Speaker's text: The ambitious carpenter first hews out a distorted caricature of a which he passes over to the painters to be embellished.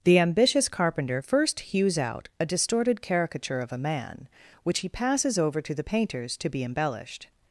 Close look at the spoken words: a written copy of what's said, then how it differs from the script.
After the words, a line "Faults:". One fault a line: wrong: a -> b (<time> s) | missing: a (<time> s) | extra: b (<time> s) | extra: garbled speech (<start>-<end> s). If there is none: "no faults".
The ambitious carpenter first hews out a distorted caricature of a man, which he passes over to the painters to be embellished.
Faults:
extra: man (3.8 s)